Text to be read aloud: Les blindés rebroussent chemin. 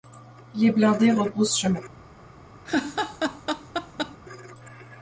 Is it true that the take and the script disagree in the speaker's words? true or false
false